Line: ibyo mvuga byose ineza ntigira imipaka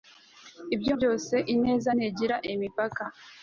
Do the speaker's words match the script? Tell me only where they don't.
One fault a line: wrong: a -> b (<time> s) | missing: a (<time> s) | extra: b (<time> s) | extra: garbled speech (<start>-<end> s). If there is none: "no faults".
missing: mvuga (0.9 s)